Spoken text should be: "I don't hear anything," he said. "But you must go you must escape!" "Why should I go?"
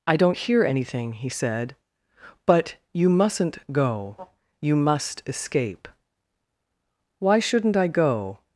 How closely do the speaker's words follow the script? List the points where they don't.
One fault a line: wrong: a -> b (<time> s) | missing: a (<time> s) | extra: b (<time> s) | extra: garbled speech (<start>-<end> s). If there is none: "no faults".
wrong: must -> mustn't (3.1 s)
wrong: should -> shouldn't (7.4 s)